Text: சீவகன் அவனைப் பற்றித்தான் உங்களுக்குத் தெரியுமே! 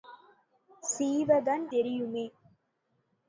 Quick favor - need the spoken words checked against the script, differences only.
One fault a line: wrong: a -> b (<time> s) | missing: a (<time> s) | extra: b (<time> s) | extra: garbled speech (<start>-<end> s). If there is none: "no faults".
missing: அவனைப் பற்றித்தான் உங்களுக்குத் (1.6 s)